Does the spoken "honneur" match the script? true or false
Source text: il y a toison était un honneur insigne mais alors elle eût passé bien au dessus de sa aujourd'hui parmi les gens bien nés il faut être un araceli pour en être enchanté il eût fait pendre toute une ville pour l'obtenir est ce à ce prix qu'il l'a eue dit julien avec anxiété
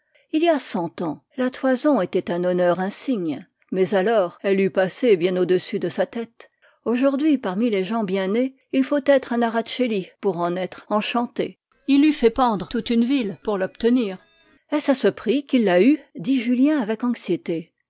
true